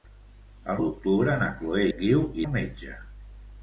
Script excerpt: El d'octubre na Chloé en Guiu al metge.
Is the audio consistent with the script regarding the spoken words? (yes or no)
yes